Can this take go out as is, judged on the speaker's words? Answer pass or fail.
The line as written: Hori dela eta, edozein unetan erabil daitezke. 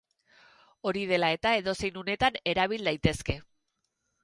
pass